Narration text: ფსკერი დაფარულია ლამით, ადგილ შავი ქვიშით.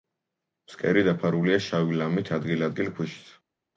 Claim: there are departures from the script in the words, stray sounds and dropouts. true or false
true